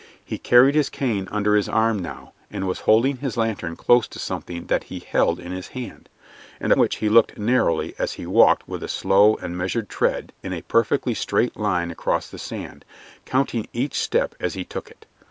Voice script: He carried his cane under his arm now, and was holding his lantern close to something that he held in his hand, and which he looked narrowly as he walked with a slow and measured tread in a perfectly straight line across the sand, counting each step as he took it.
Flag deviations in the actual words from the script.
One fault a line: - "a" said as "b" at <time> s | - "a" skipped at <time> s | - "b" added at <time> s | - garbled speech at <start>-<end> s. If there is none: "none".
none